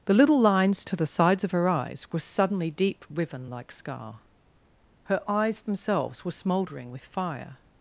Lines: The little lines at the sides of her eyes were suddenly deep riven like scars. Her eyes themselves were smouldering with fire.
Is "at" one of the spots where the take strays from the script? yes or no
yes